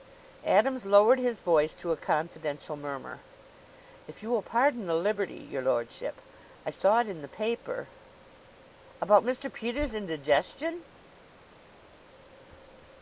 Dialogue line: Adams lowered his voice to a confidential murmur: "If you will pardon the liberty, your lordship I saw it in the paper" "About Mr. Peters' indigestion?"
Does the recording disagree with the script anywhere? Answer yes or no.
no